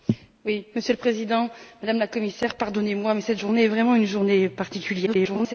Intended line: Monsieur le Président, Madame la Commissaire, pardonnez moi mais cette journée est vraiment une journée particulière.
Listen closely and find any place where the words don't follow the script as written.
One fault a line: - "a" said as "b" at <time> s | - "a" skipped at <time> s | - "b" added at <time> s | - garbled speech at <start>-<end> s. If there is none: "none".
- garbled speech at 5.1-5.5 s